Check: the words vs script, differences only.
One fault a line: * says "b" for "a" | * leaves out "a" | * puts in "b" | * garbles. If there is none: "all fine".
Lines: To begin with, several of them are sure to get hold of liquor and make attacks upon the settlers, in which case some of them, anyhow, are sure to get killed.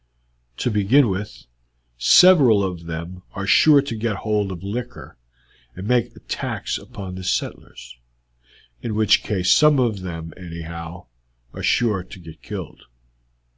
all fine